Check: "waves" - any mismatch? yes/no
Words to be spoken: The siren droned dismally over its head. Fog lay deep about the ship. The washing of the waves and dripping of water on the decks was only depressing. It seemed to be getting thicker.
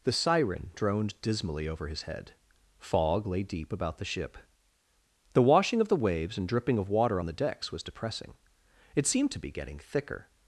no